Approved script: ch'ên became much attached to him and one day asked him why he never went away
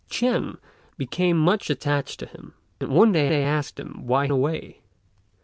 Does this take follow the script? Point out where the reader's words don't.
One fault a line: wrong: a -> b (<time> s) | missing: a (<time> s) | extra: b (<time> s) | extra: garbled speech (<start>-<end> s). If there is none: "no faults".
extra: day (3.3 s)
missing: he never went (4.3 s)